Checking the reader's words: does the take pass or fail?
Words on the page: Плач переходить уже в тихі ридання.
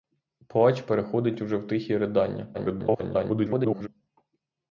fail